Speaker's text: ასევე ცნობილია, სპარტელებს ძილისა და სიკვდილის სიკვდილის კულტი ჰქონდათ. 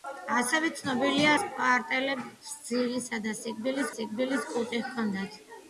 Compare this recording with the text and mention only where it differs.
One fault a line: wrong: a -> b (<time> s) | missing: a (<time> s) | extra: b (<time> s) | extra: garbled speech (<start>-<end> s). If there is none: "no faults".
no faults